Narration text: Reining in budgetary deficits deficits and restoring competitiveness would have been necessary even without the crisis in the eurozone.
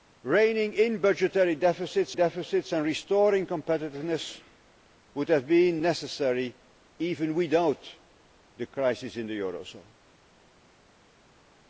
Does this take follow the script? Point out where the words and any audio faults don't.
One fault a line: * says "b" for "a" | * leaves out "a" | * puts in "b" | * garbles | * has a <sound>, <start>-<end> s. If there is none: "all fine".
all fine